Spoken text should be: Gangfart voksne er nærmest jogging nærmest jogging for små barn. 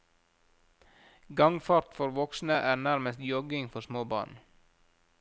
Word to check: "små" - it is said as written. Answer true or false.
true